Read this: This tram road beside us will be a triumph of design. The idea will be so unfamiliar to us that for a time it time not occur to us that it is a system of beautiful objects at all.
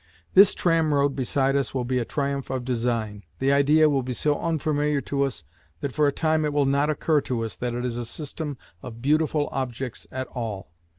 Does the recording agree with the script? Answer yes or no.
no